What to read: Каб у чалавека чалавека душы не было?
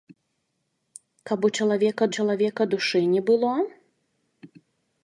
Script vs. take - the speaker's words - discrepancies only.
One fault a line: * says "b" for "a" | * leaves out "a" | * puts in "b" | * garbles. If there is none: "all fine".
all fine